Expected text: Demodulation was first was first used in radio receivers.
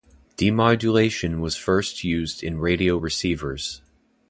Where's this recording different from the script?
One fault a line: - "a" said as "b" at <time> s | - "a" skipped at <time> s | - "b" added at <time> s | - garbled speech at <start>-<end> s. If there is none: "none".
- "was first" skipped at 2.0 s